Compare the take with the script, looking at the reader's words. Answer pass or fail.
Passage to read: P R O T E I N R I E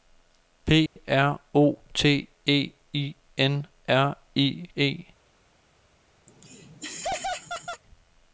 pass